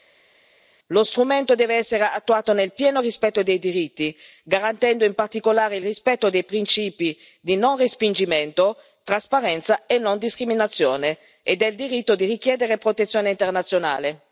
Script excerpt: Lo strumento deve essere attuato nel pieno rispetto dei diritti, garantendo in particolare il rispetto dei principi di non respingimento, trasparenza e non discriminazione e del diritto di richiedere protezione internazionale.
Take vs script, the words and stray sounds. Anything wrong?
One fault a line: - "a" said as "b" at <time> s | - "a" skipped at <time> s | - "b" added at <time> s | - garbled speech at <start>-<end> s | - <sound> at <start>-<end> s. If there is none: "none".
none